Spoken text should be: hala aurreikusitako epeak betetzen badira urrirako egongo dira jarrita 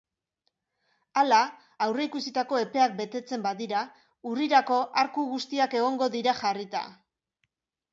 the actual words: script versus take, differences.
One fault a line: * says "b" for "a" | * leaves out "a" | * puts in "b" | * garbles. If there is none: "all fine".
* puts in "arku guztiak"